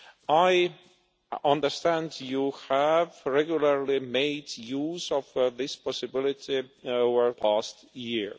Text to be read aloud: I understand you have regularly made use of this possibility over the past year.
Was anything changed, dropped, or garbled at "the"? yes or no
yes